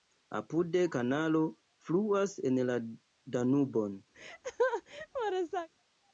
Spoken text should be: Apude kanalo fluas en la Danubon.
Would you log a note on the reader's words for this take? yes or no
no